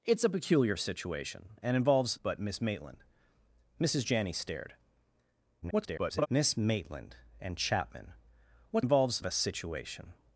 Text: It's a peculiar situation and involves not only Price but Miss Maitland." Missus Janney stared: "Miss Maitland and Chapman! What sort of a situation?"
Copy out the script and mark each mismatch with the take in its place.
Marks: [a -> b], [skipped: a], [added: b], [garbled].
It's a peculiar situation and involves [skipped: not only Price] but Miss Maitland." Missus Janney stared: [garbled] "Miss Maitland and Chapman! What [sort -> involves] of a situation?"